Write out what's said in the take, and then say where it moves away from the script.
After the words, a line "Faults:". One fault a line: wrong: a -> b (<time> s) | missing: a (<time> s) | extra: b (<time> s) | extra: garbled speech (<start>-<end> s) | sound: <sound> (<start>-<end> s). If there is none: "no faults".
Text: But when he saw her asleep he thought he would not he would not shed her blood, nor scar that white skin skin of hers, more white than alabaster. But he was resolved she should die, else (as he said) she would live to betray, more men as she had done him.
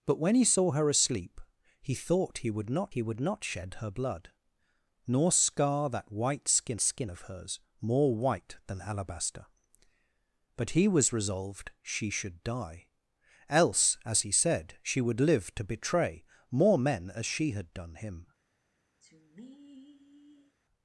But when he saw her asleep he thought he would not he would not shed her blood, nor scar that white skin skin of hers, more white than alabaster. But he was resolved she should die, else (as he said) she would live to betray, more men as she had done him.
Faults:
sound: sigh (19.0-20.6 s)